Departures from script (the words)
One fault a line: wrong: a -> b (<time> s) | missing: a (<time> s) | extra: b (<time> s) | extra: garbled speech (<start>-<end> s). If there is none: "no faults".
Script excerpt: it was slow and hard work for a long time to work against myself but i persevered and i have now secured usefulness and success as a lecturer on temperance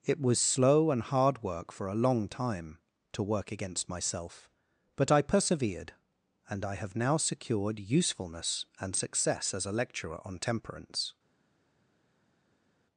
no faults